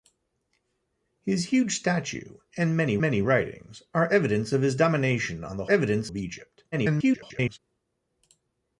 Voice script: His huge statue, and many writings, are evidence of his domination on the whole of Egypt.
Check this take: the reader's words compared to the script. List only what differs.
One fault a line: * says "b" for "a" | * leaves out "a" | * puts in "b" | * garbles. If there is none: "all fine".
* puts in "many"
* says "evidence" for "whole"
* garbles